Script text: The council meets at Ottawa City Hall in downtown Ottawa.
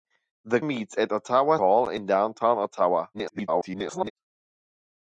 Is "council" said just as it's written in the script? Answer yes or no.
no